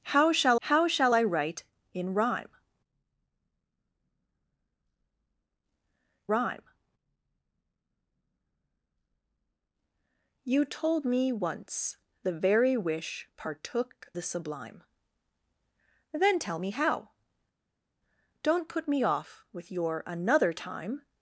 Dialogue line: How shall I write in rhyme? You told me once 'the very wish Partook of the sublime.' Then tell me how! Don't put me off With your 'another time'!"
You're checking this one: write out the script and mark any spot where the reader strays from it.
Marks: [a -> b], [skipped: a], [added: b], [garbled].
How shall [added: how shall] I write in rhyme? [added: rhyme] You told me once 'the very wish Partook [skipped: of] the sublime.' Then tell me how! Don't put me off With your 'another time'!"